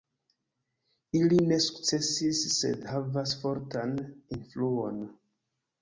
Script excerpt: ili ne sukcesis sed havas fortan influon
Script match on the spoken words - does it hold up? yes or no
yes